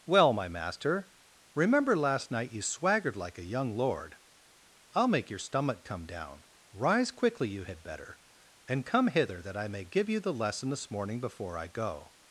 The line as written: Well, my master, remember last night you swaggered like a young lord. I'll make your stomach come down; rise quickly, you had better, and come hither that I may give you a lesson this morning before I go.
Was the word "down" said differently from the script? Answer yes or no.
no